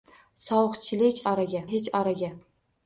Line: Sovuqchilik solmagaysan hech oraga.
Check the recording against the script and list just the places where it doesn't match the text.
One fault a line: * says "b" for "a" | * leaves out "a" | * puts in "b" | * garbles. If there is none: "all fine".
* says "oraga" for "solmagaysan"